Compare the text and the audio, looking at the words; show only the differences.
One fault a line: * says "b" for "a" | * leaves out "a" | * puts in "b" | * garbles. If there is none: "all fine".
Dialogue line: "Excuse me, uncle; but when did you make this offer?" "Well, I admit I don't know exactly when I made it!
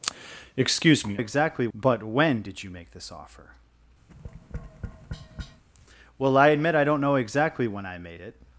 * says "exactly" for "uncle"